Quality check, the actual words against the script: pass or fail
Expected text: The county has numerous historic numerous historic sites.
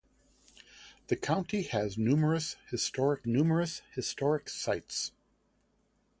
pass